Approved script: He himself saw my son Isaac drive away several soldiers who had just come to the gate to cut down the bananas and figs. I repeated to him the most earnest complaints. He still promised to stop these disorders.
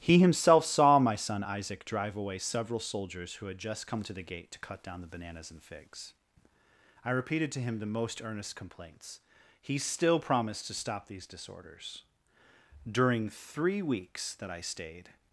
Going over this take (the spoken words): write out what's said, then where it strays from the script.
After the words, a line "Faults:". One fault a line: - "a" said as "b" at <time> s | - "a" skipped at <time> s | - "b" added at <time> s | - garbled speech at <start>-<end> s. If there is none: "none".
He himself saw my son Isaac drive away several soldiers who had just come to the gate to cut down the bananas and figs. I repeated to him the most earnest complaints. He still promised to stop these disorders. During three weeks that I stayed
Faults:
- "During three weeks that I stayed" added at 12.9 s